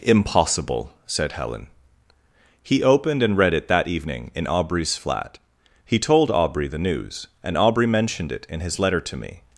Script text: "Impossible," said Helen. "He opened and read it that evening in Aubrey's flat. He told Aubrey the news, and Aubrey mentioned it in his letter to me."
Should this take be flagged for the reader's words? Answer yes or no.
no